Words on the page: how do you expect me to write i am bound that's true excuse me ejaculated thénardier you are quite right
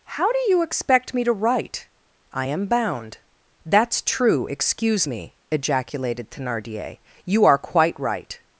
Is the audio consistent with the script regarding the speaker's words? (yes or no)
yes